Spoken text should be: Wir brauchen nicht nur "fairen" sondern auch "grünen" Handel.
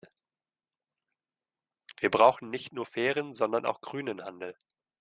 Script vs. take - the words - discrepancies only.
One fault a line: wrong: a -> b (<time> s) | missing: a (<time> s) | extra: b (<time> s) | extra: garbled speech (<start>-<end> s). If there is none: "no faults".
no faults